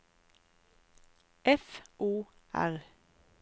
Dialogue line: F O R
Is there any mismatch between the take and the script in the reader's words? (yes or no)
no